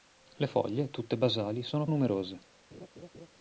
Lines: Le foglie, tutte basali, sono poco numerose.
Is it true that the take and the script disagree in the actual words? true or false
true